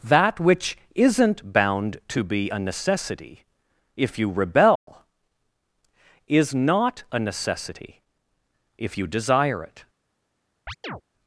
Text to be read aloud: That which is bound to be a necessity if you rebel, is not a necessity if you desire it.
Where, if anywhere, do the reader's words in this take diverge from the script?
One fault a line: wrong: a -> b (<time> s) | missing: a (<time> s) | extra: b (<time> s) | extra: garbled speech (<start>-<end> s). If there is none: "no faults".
wrong: is -> isn't (0.9 s)